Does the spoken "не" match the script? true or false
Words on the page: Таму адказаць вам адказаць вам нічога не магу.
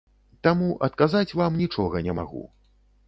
true